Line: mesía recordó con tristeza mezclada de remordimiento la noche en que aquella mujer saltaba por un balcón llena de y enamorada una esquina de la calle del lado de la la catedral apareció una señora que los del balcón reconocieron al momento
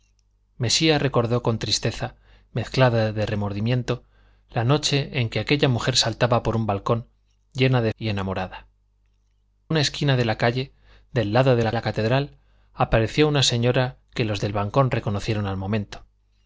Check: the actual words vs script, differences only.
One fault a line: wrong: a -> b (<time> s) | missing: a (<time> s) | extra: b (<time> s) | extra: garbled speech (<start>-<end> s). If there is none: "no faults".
no faults